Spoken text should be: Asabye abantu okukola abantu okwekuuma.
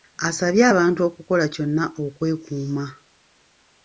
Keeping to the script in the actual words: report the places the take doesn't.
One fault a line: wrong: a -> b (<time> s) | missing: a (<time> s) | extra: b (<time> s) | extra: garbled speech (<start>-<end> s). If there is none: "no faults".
wrong: abantu -> kyonna (1.5 s)